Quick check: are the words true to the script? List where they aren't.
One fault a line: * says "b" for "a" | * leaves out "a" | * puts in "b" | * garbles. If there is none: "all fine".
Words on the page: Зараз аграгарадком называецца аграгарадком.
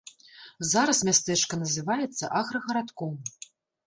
* says "мястэчка" for "аграгарадком"